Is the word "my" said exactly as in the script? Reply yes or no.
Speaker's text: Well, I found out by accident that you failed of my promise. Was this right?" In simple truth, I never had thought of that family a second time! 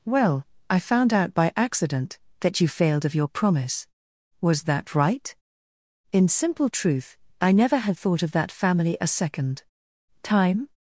no